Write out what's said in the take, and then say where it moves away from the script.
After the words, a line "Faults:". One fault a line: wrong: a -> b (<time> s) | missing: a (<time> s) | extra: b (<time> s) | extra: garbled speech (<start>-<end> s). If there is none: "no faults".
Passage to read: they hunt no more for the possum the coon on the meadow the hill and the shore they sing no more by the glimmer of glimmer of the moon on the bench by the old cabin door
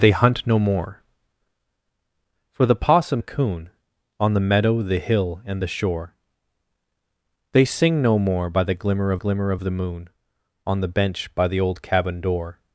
they hunt no more for the possum the coon on the meadow the hill and the shore they sing no more by the glimmer of glimmer of the moon on the bench by the old cabin door
Faults:
no faults